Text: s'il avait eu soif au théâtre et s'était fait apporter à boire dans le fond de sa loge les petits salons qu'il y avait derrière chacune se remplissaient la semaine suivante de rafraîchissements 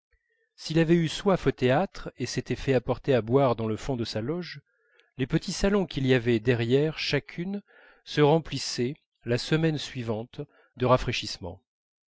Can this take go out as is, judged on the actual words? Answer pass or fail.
pass